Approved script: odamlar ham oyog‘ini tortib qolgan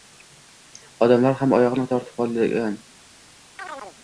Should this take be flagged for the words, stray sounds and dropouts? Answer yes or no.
yes